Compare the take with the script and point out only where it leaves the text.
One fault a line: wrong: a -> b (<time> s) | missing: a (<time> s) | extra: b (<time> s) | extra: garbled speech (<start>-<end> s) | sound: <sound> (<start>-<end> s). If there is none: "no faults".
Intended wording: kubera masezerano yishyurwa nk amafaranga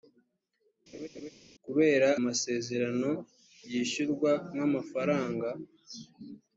sound: laugh (0.9-1.3 s)